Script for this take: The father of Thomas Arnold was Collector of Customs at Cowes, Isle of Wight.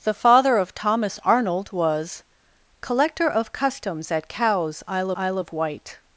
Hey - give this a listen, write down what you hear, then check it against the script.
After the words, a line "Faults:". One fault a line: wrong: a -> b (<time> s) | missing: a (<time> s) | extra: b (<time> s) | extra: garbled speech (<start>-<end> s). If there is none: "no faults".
The father of Thomas Arnold was Collector of Customs at Cowes, Isle Isle of Wight.
Faults:
extra: Isle (5.1 s)